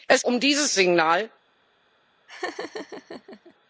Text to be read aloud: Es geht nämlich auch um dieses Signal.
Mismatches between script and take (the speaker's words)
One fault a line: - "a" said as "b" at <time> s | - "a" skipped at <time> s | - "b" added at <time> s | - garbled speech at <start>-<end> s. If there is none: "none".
- "geht nämlich auch" skipped at 0.2 s